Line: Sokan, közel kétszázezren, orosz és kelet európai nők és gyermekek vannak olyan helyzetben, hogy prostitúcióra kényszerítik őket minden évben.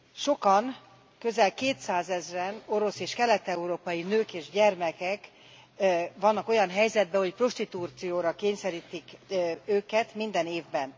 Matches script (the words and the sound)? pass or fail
pass